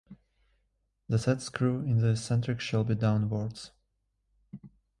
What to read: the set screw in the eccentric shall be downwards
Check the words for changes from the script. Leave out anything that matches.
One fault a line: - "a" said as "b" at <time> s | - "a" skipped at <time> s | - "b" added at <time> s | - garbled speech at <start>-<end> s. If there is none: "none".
none